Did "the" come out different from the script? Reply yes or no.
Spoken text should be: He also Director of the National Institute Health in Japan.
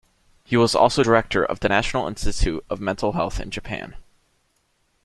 no